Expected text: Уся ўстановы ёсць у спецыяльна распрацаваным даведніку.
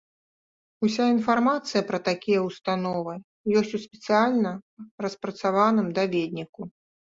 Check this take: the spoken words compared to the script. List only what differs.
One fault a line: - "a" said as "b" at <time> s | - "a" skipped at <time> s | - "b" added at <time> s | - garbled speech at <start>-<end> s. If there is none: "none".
- "інфармацыя пра такія" added at 1.1 s